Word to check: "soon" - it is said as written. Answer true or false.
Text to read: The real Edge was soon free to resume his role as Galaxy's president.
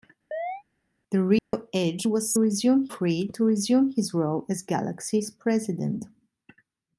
false